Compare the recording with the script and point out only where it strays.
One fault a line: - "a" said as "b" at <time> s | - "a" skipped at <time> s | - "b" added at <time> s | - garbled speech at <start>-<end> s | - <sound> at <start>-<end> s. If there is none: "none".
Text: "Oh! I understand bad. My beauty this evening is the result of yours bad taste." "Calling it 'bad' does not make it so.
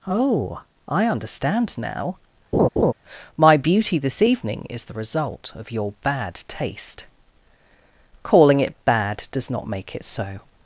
- "bad" said as "now" at 1.8 s
- laugh at 2.5-2.9 s
- "yours" said as "your" at 5.7 s